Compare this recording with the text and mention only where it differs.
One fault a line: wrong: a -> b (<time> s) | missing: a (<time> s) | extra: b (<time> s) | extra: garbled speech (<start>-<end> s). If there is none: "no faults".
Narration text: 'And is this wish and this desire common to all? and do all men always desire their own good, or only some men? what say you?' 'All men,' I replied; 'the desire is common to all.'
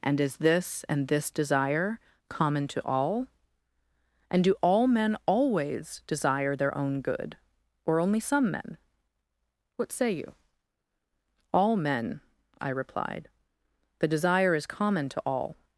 missing: wish (0.8 s)